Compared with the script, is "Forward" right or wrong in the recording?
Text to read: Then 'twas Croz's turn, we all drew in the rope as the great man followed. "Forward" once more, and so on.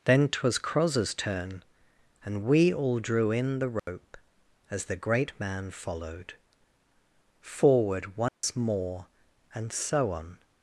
right